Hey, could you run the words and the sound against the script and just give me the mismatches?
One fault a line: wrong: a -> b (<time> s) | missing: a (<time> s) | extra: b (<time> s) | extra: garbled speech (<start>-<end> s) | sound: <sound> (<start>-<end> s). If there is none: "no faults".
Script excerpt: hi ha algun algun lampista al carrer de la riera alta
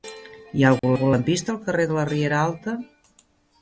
sound: dropout (0.8-0.8 s)